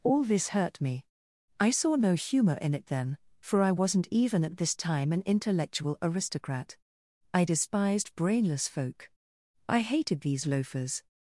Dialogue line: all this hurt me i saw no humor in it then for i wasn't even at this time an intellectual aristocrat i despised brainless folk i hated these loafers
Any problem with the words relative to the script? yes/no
no